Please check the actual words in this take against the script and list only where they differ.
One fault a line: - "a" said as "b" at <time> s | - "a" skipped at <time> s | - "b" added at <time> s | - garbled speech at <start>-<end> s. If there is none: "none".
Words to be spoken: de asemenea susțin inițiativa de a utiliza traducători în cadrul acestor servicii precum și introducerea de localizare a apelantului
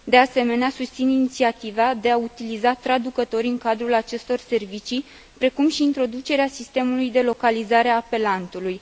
- "sistemului" added at 6.5 s